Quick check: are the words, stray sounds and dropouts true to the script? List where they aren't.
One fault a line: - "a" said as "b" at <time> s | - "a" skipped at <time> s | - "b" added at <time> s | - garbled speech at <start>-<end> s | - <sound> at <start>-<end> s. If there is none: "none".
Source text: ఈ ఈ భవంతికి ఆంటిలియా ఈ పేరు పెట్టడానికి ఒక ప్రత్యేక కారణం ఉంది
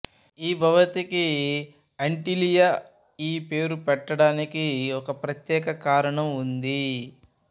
- "ఈ" skipped at 0.5 s